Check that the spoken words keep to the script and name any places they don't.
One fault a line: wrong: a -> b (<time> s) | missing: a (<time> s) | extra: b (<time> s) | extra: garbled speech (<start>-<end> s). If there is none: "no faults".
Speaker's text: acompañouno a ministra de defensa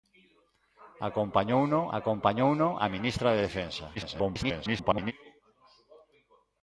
extra: acompañouno (2.0 s)
extra: garbled speech (4.0-5.1 s)